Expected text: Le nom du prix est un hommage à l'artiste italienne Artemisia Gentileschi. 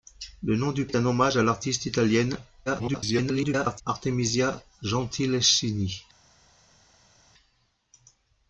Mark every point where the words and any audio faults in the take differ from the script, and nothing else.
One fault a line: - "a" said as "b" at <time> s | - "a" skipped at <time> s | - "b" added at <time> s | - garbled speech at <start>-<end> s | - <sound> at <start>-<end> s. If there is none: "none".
- "prix" skipped at 0.9 s
- garbled speech at 2.7-3.8 s